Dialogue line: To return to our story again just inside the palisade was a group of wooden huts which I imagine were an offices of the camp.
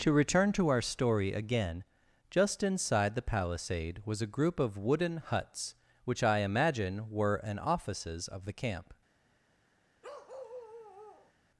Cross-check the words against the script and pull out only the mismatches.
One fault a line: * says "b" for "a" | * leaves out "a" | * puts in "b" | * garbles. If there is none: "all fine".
all fine